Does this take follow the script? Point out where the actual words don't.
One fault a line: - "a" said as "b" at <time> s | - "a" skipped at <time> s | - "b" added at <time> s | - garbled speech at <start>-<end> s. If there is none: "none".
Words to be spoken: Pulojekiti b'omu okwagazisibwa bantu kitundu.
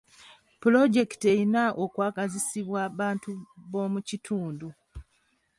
- "b'omu" said as "erina" at 1.3 s
- "b'omu" added at 3.7 s